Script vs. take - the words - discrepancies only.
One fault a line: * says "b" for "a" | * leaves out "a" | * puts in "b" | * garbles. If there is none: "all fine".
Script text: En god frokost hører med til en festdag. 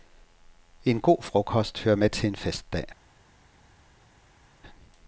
all fine